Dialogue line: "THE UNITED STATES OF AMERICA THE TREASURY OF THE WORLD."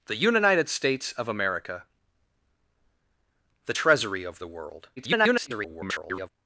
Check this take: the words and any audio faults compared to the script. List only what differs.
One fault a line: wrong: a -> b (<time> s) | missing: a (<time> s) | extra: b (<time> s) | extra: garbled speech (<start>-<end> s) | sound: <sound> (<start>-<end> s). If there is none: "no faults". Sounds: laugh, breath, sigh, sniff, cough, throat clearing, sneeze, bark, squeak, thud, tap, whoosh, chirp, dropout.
extra: garbled speech (5.0-6.3 s)